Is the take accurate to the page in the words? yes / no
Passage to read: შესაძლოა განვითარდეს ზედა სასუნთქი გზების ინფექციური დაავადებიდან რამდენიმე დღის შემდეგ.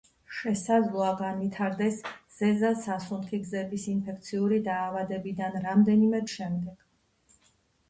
no